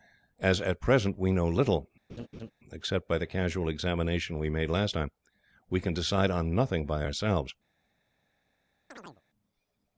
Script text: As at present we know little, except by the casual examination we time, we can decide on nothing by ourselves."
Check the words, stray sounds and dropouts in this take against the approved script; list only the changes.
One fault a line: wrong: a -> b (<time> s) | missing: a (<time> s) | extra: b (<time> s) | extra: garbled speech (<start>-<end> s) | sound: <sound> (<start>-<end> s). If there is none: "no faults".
sound: laugh (2.1-2.5 s)
extra: made last (4.5 s)
sound: chirp (8.9-9.2 s)